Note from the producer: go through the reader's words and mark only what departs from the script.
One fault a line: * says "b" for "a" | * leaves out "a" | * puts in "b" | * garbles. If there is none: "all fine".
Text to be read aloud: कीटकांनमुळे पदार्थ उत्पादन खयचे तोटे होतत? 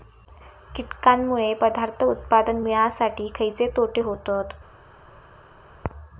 * puts in "मिळासाठी"